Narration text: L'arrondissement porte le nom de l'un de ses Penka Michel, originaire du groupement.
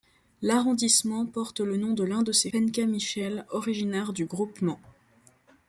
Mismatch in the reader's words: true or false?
false